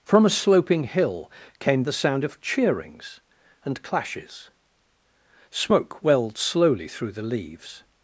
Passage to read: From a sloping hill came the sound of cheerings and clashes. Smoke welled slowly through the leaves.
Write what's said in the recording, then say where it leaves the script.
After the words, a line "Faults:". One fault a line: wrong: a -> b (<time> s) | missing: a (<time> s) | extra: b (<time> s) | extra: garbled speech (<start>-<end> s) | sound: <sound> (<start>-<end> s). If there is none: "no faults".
From a sloping hill came the sound of cheerings and clashes. Smoke welled slowly through the leaves.
Faults:
no faults